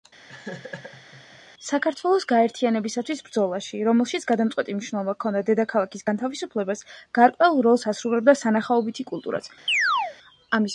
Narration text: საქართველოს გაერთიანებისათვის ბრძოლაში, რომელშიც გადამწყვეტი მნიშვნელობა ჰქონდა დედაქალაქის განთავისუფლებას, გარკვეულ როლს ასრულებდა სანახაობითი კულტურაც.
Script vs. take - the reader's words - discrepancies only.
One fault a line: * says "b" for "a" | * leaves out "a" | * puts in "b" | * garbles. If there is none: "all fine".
all fine